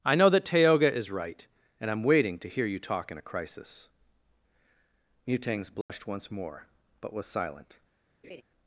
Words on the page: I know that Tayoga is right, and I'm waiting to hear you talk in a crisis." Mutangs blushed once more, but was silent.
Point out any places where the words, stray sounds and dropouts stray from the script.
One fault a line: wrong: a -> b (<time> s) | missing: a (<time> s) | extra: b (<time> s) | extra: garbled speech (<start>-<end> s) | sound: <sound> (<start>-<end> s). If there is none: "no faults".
sound: dropout (5.8-5.9 s)
sound: laugh (8.2-8.4 s)